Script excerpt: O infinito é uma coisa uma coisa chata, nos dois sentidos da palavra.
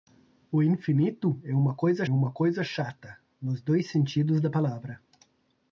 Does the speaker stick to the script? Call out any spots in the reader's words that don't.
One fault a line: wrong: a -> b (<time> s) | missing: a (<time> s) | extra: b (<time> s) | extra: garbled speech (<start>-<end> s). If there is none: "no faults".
no faults